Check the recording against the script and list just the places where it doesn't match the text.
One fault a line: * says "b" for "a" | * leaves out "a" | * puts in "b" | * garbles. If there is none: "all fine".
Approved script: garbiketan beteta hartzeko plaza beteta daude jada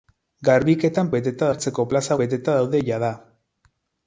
all fine